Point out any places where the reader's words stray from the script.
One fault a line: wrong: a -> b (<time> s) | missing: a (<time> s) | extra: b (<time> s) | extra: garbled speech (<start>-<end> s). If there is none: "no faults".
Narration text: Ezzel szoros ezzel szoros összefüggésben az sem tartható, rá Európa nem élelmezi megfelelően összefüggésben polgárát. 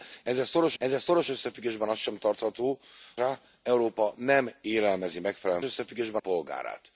no faults